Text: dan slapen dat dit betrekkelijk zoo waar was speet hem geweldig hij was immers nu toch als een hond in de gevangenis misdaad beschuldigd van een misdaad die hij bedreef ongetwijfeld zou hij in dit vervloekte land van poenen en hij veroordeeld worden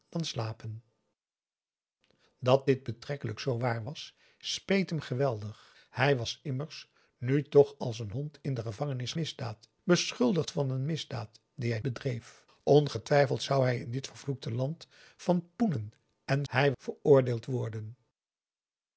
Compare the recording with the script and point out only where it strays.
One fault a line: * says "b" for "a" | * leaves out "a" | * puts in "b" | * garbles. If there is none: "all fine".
all fine